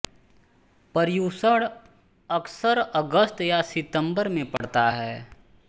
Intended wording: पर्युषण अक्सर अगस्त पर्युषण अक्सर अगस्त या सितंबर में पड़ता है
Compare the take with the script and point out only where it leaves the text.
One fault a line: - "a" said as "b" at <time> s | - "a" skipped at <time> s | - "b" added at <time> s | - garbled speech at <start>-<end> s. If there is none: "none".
- "पर्युषण अक्सर अगस्त" skipped at 3.4 s